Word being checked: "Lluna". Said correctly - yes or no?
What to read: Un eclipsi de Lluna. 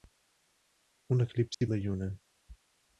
yes